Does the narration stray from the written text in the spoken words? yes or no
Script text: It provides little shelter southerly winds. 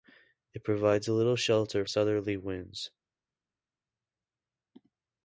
no